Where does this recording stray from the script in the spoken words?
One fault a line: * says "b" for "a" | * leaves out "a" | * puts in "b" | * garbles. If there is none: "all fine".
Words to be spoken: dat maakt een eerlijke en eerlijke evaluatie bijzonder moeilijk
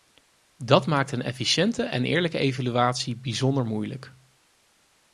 * says "efficiënte" for "eerlijke"